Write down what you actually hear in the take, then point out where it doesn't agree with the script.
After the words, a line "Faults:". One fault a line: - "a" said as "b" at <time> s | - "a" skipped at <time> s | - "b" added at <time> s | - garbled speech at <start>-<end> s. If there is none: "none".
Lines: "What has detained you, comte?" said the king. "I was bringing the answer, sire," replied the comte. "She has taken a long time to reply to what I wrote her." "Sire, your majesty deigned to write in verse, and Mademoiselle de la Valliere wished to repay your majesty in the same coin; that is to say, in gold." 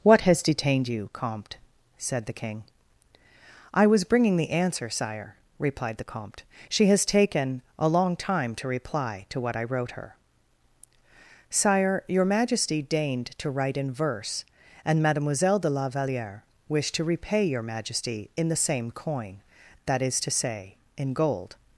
"What has detained you, comte?" said the king. "I was bringing the answer, sire," replied the comte. "She has taken a long time to reply to what I wrote her." "Sire, your majesty deigned to write in verse, and Mademoiselle de la Valliere wished to repay your majesty in the same coin; that is to say, in gold."
Faults:
none